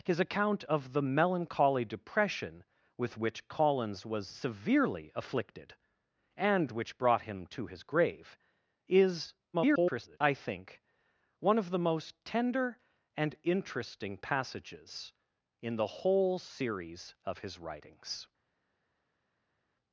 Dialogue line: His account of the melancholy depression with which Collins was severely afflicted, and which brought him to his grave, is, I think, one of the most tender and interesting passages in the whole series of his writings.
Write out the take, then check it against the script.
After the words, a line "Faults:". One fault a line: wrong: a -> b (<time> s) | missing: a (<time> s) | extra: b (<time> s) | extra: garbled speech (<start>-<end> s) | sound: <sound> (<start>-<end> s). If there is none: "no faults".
His account of the melancholy depression with which Collins was severely afflicted, and which brought him to his grave, is, [garbled] I think, one of the most tender and interesting passages in the whole series of his writings.
Faults:
extra: garbled speech (9.5-10.2 s)